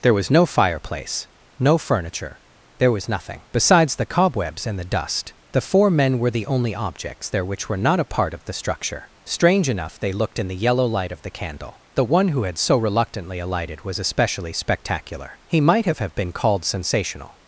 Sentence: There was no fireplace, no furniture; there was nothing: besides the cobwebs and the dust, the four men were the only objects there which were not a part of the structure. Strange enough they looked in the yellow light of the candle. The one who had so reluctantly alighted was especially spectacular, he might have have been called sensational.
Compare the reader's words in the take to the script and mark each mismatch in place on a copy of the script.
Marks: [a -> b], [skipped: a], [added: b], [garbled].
There was no fireplace, no furniture; there was nothing: besides the cobwebs and the dust, the four men were the only objects there which were not a part of the structure. Strange enough they looked in the yellow light of the candle. The one who had so reluctantly alighted was especially spectacular, he might have have been called sensational.